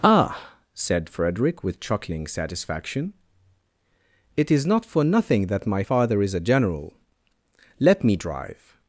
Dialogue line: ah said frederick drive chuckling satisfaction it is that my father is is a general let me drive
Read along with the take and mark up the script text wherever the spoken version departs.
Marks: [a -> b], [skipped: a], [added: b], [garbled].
ah said frederick [drive -> with] chuckling satisfaction it is [added: not for nothing] that my father is [skipped: is] a general let me drive